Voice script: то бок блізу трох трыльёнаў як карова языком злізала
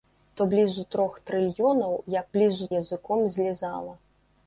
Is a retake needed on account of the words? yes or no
yes